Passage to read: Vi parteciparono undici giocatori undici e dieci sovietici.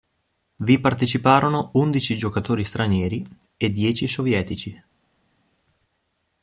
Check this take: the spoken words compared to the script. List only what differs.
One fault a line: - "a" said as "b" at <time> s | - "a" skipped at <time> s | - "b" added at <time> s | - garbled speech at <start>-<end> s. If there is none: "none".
- "undici" said as "stranieri" at 2.6 s